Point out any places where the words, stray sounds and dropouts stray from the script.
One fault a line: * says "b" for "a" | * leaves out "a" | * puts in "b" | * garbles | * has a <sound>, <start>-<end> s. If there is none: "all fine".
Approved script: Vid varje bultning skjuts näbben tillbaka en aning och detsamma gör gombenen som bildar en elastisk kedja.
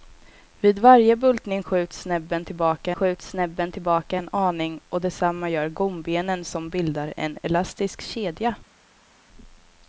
* puts in "skjuts näbben tillbaka"